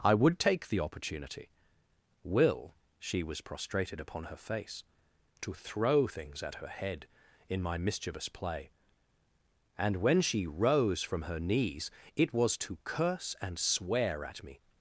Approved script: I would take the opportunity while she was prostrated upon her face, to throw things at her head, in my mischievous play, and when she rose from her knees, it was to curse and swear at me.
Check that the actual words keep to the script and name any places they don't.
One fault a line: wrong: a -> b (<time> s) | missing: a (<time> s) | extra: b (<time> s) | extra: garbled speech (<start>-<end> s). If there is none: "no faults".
wrong: while -> will (2.2 s)